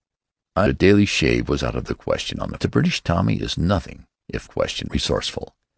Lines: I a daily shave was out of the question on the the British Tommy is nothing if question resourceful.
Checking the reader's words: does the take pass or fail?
pass